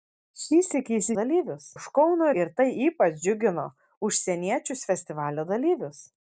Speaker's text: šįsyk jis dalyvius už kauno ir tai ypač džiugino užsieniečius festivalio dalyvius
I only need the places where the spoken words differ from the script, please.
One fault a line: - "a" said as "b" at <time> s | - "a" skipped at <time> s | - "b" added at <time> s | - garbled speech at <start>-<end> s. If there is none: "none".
none